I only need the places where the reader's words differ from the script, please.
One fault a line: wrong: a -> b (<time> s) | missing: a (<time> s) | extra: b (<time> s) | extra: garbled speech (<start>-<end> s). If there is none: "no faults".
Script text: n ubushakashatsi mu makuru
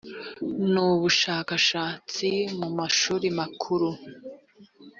extra: mashuri (2.8 s)